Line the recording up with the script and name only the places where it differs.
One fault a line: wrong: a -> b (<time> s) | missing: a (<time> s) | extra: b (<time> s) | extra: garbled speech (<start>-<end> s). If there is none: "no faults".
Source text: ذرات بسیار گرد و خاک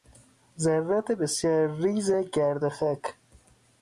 extra: ریز (1.8 s)